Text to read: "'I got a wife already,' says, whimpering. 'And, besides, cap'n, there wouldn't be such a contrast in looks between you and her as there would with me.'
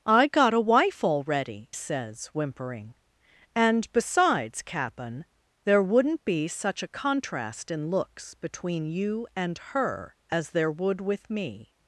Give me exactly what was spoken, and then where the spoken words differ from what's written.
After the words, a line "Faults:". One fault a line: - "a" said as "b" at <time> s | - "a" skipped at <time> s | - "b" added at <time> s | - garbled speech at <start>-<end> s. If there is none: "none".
"'I got a wife already,' says, whimpering. 'And, besides, cap'n, there wouldn't be such a contrast in looks between you and her as there would with me.'
Faults:
none